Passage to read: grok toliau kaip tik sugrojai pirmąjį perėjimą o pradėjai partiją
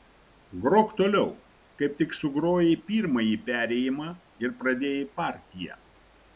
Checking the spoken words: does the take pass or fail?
fail